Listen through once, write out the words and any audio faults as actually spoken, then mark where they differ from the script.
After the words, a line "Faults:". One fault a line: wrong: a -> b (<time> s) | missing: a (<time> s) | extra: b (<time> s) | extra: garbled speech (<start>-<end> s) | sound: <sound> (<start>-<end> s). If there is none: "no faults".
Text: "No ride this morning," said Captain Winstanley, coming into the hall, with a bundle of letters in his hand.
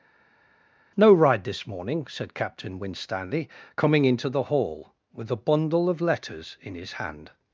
"No ride this morning," said Captain Winstanley, coming into the hall, with a bundle of letters in his hand.
Faults:
no faults